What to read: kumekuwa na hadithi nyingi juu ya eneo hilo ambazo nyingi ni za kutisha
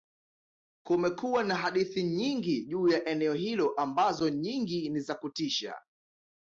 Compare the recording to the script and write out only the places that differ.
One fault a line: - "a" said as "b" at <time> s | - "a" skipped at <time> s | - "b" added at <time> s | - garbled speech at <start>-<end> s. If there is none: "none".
none